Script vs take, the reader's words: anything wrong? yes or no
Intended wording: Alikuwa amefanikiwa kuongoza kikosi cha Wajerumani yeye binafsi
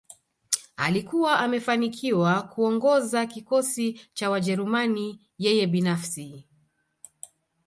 no